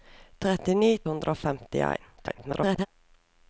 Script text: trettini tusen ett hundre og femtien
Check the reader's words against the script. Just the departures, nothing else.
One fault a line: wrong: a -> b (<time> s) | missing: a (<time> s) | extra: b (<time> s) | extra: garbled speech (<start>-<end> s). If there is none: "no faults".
missing: tusen ett (0.9 s)
extra: garbled speech (2.2-2.9 s)